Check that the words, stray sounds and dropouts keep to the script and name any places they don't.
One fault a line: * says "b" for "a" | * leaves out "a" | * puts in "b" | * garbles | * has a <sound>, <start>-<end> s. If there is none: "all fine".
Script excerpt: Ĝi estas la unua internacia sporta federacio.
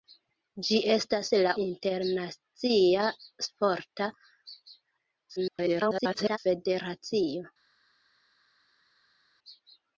* leaves out "unua"
* garbles